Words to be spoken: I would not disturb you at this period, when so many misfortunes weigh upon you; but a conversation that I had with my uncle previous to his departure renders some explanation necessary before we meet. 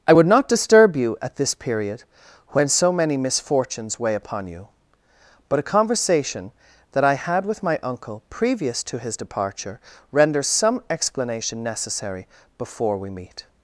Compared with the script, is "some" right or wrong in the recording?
right